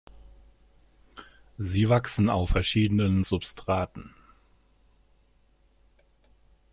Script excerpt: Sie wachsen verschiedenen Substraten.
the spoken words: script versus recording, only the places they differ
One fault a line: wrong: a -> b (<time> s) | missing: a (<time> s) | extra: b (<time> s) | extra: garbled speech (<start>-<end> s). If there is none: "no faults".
extra: auf (2.3 s)